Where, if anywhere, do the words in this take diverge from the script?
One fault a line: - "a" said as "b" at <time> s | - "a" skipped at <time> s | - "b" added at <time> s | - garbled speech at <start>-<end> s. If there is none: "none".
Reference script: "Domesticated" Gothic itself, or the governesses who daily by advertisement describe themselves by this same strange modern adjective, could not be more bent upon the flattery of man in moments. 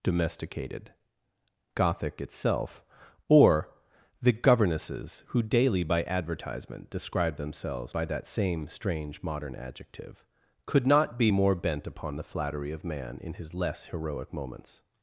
- "this" said as "that" at 8.1 s
- "his less heroic" added at 13.3 s